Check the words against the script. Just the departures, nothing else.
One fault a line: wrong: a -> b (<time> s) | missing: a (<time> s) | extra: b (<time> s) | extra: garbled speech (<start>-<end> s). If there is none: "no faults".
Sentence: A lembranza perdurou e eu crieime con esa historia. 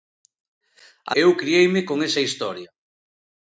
missing: lembranza perdurou (1.1 s)